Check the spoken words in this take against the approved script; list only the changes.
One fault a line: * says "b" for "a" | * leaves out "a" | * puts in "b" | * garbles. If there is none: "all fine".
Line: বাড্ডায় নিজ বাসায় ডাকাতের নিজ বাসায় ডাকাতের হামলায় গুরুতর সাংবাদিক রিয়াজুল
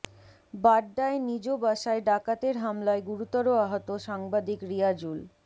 * leaves out "নিজ বাসায় ডাকাতের"
* puts in "আহত"